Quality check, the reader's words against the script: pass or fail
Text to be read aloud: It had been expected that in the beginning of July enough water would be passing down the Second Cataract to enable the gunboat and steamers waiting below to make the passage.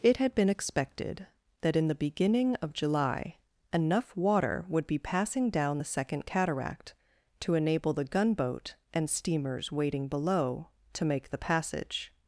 pass